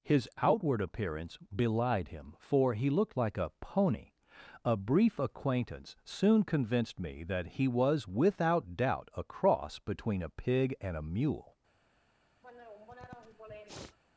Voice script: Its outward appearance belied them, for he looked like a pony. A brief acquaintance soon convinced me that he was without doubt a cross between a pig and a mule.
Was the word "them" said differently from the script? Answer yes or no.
yes